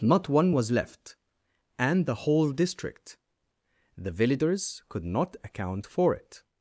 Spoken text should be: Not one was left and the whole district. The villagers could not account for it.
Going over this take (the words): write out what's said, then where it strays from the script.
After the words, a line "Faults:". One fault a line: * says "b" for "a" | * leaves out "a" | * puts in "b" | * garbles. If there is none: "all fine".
Not one was left and the whole district. The villagers could not account for it.
Faults:
all fine